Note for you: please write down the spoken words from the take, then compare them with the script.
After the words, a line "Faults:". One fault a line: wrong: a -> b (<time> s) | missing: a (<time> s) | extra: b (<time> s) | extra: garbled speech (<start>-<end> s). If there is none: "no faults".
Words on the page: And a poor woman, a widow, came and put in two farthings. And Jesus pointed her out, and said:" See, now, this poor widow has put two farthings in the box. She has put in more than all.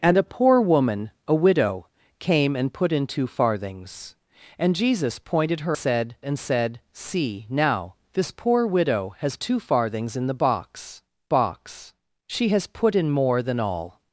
And a poor woman, a widow, came and put in two farthings. And Jesus pointed her said, and said:" See, now, this poor widow has two farthings in the box box. She has put in more than all.
Faults:
wrong: out -> said (5.7 s)
missing: put (9.4 s)
extra: box (11.3 s)